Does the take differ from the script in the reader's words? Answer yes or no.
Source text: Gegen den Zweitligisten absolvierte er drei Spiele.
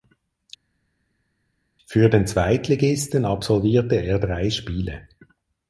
yes